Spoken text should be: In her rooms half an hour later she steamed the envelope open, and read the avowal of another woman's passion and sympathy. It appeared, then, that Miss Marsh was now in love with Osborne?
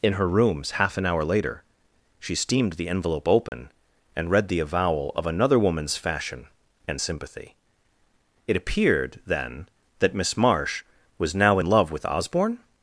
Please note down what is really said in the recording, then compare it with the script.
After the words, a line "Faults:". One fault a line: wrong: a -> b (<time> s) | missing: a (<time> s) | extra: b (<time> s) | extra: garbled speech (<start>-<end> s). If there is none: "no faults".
In her rooms half an hour later she steamed the envelope open, and read the avowal of another woman's fashion and sympathy. It appeared, then, that Miss Marsh was now in love with Osborne?
Faults:
wrong: passion -> fashion (6.0 s)